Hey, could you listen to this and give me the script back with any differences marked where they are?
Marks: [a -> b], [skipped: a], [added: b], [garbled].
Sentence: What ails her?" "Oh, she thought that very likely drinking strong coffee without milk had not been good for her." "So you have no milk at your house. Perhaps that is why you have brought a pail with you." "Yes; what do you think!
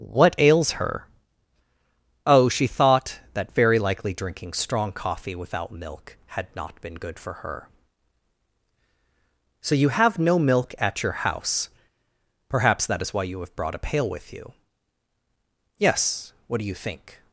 What ails her?" "Oh, she thought that very likely drinking strong coffee without milk had not been good for her." "So you have no milk at your house. Perhaps that is why you have brought a pail with you." "Yes; what do you think!